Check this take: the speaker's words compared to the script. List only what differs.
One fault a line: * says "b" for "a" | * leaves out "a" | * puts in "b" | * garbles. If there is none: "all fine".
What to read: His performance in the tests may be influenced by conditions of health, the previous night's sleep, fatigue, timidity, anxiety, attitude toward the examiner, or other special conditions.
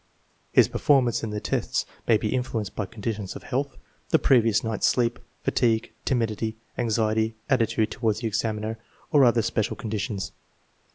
all fine